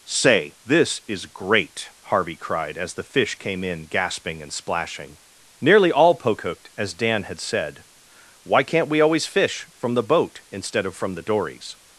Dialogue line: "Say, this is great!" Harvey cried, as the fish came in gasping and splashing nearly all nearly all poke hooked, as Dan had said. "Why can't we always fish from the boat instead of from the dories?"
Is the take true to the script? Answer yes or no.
no